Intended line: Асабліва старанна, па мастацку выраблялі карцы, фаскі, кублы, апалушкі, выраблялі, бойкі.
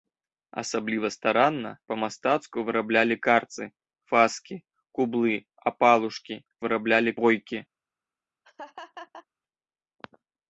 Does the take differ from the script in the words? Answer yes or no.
no